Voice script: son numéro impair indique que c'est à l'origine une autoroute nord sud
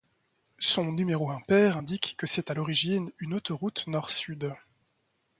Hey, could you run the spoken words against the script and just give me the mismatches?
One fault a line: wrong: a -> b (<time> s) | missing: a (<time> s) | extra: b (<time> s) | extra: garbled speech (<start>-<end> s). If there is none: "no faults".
no faults